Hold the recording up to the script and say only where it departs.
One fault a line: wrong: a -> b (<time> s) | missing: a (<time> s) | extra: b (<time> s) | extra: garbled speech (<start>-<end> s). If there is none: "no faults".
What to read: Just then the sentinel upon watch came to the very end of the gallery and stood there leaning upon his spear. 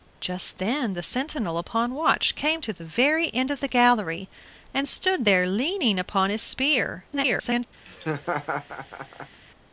extra: garbled speech (7.1-7.7 s)